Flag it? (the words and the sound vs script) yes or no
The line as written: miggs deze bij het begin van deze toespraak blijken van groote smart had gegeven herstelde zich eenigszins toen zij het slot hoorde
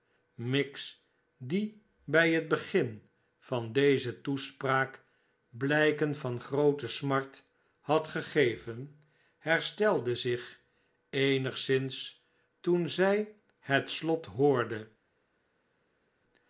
yes